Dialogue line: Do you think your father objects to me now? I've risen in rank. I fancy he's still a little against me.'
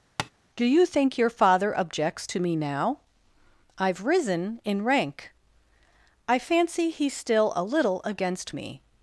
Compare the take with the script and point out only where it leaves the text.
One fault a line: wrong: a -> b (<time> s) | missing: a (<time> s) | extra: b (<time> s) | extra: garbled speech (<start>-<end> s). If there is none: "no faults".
no faults